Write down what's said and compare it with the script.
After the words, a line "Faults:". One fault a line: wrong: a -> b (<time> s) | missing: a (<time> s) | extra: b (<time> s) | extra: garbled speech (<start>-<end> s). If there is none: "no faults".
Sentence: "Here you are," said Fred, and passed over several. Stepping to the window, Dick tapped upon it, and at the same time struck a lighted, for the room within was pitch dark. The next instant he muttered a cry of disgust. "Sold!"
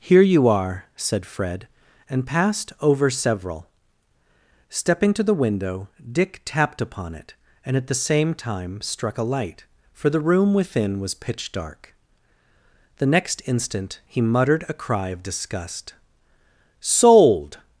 "Here you are," said Fred, and passed over several. Stepping to the window, Dick tapped upon it, and at the same time struck a light, for the room within was pitch dark. The next instant he muttered a cry of disgust. "Sold!"
Faults:
wrong: lighted -> light (9.2 s)